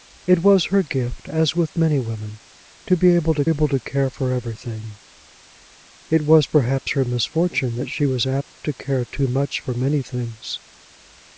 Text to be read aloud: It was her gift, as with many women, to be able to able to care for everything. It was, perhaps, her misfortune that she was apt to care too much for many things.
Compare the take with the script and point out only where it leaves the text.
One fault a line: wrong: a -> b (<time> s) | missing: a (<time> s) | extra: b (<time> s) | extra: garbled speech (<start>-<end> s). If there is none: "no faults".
no faults